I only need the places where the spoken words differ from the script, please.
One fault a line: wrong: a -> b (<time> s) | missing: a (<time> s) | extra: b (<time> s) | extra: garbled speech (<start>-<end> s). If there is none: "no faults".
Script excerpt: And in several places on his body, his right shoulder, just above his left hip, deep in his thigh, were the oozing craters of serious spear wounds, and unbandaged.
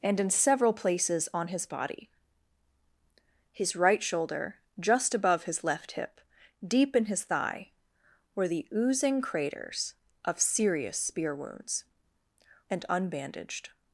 no faults